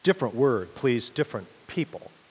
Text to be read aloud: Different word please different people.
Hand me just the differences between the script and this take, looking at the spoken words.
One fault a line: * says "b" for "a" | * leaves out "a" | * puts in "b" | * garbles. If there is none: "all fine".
all fine